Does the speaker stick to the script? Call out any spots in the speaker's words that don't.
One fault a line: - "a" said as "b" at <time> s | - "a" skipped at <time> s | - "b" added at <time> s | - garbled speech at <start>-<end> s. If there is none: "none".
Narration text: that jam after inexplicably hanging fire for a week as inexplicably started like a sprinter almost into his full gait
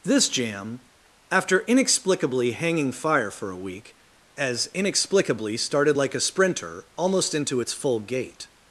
- "that" said as "this" at 0.0 s
- "his" said as "its" at 7.6 s